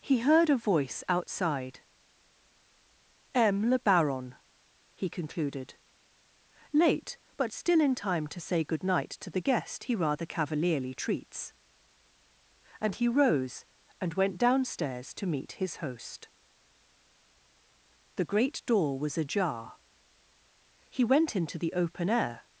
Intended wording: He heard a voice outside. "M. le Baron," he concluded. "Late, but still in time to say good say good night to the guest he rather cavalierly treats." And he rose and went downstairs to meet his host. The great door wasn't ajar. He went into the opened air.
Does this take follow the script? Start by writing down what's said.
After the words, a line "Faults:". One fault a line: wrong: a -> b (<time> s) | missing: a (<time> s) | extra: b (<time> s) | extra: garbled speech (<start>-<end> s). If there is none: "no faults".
He heard a voice outside. "M. le Baron," he concluded. "Late, but still in time to say good night to the guest he rather cavalierly treats." And he rose and went downstairs to meet his host. The great door was ajar. He went into the open air.
Faults:
missing: say good (8.8 s)
wrong: wasn't -> was (19.0 s)
wrong: opened -> open (21.7 s)